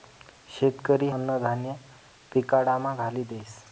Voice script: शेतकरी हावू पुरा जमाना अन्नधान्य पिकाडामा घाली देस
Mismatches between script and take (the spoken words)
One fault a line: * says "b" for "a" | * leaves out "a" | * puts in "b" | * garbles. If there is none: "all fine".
* leaves out "हावू पुरा जमाना"